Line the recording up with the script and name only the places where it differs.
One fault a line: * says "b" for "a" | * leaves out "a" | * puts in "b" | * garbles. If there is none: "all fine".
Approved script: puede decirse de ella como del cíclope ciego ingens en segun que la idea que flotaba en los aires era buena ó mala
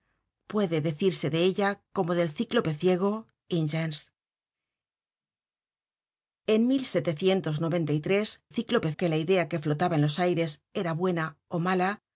* says "cíclope" for "segun"